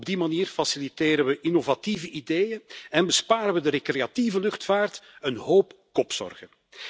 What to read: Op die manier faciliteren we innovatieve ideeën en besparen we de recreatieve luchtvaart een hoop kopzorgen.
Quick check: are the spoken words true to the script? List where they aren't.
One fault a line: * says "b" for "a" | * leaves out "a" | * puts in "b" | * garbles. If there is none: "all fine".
all fine